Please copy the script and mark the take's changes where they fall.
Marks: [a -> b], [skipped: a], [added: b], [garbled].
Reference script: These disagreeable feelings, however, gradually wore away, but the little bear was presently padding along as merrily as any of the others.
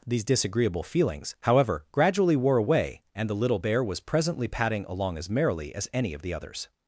These disagreeable feelings, however, gradually wore away, [but -> and] the little bear was presently padding along as merrily as any of the others.